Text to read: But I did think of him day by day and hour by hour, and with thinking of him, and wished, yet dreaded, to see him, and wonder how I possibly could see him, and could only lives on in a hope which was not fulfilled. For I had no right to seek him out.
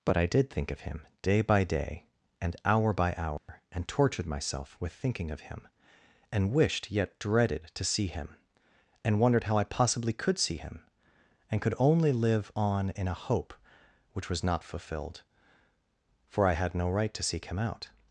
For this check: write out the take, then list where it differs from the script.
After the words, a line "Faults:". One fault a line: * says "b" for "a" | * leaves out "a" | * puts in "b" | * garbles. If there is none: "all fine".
But I did think of him day by day and hour by hour, and tortured myself with thinking of him, and wished, yet dreaded, to see him, and wondered how I possibly could see him, and could only live on in a hope which was not fulfilled. For I had no right to seek him out.
Faults:
* puts in "tortured myself"
* says "wondered" for "wonder"
* says "live" for "lives"